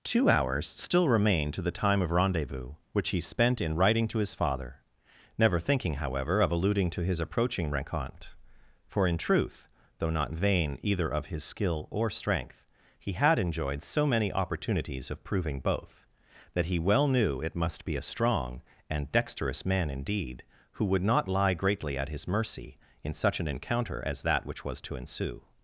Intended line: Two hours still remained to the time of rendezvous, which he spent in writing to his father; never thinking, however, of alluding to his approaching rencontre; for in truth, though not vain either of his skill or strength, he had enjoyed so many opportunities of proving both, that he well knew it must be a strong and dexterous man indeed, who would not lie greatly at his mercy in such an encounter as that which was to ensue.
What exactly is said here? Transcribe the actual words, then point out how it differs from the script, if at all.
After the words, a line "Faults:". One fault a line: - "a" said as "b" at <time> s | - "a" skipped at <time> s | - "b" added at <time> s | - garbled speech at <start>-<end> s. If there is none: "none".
Two hours still remained to the time of rendezvous, which he spent in writing to his father; never thinking, however, of alluding to his approaching rencontre; for in truth, though not vain either of his skill or strength, he had enjoyed so many opportunities of proving both, that he well knew it must be a strong and dexterous man indeed, who would not lie greatly at his mercy in such an encounter as that which was to ensue.
Faults:
none